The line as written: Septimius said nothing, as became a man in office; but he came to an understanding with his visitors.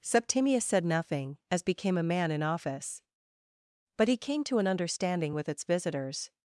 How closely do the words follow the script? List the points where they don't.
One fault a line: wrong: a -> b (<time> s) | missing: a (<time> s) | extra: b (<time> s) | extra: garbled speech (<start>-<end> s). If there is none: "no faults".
wrong: his -> its (5.5 s)